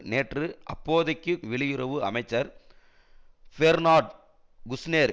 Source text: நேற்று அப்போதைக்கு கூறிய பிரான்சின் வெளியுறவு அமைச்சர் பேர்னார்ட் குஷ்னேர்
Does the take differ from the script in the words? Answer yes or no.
yes